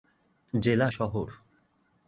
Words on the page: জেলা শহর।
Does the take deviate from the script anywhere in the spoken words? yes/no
no